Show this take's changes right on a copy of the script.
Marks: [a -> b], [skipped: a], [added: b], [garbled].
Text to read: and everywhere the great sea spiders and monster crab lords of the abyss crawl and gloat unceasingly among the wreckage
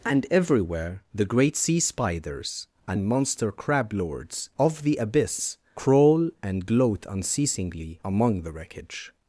and everywhere the great sea spiders and monster crab lords of the abyss crawl and gloat unceasingly among the wreckage